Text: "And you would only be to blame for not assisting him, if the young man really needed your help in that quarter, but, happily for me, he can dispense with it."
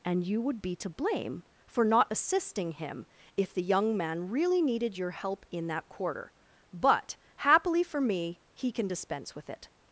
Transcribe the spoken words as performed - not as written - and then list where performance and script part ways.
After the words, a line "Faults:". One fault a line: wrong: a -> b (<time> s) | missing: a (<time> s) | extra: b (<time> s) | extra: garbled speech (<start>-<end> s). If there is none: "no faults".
"And you would be to blame for not assisting him, if the young man really needed your help in that quarter, but, happily for me, he can dispense with it."
Faults:
missing: only (0.6 s)